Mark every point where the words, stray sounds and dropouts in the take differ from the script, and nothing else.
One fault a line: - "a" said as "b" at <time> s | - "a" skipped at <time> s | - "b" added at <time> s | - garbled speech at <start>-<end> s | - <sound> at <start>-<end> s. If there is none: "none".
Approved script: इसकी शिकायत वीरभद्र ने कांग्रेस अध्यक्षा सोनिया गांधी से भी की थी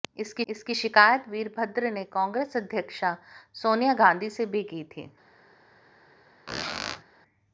- "इसकी" added at 0.5 s
- squeak at 6.5-7.0 s